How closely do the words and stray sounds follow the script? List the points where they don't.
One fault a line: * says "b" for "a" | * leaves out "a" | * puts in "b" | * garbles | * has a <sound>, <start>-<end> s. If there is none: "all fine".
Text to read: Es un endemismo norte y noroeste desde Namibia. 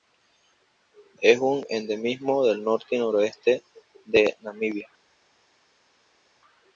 * puts in "del"
* says "de" for "desde"